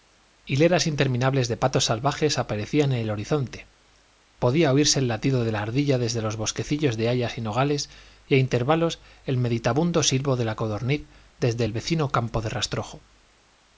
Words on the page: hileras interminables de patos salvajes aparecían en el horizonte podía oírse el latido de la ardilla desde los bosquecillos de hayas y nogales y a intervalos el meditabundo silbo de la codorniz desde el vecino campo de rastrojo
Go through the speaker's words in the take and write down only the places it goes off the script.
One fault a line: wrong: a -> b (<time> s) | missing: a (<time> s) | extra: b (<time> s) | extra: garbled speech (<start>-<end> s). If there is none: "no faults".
no faults